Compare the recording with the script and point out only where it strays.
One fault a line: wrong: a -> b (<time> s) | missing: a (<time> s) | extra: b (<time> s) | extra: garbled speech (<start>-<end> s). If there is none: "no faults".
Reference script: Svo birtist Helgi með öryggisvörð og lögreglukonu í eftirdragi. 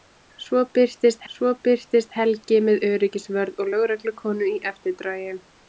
extra: svo birtist (1.3 s)